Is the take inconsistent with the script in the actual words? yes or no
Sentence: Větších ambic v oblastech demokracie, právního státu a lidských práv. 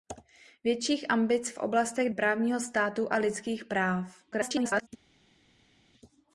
yes